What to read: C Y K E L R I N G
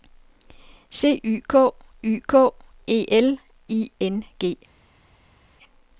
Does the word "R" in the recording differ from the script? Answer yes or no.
yes